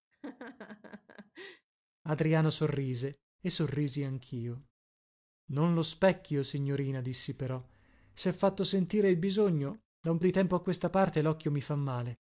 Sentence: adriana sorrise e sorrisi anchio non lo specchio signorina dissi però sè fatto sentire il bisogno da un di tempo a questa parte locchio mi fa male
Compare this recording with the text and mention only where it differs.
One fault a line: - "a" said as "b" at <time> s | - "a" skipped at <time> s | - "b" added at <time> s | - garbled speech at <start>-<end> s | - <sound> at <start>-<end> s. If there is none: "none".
- laugh at 0.1-1.7 s